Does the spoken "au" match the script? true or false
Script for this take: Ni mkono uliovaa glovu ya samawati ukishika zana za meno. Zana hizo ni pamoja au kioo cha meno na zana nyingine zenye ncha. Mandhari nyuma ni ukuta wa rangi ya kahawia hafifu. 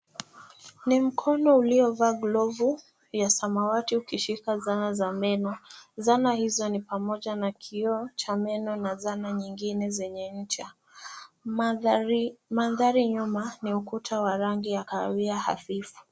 false